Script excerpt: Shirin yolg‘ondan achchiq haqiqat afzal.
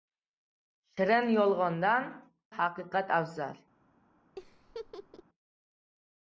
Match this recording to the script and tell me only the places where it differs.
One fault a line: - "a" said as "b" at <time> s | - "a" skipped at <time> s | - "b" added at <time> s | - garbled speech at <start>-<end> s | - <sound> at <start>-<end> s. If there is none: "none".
- "achchiq" skipped at 2.1 s
- laugh at 4.4-5.2 s